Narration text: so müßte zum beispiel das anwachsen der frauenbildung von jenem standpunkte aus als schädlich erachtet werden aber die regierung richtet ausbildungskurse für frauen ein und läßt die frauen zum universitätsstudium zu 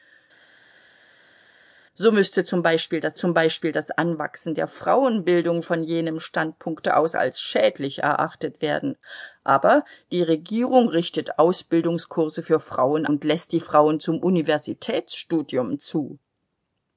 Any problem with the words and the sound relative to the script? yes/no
yes